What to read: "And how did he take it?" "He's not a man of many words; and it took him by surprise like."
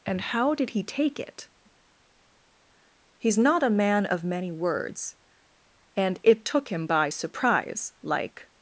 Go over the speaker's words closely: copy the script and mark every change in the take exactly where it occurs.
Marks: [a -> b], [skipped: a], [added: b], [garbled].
"And how did he take it?" "He's not a man of many words; and it took him by surprise like."